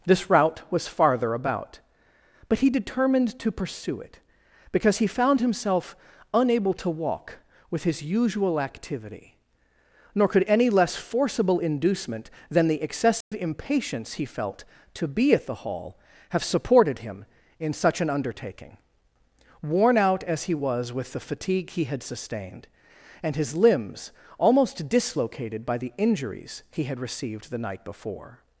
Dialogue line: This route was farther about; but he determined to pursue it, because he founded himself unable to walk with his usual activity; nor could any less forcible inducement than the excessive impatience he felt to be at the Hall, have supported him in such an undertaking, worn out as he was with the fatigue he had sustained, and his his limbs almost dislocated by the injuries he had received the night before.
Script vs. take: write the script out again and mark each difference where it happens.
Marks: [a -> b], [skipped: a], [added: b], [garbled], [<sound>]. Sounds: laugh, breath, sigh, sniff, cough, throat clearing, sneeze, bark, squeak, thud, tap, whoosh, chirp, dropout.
This route was farther about; but he determined to pursue it, because he [founded -> found] himself unable to walk with his usual activity; nor could any less forcible inducement than the excessive [dropout] impatience he felt to be at the Hall, have supported him in such an undertaking, worn out as he was with the fatigue he had sustained, and his [skipped: his] limbs almost dislocated by the injuries he had received the night before.